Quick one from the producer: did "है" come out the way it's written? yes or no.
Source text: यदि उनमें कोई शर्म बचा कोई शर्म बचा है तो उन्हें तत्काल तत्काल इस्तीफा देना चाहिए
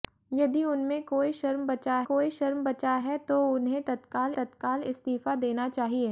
yes